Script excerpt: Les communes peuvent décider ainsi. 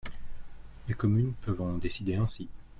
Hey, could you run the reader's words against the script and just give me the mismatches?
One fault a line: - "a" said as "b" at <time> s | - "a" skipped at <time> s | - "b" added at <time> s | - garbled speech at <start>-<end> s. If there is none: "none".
- "en" added at 1.6 s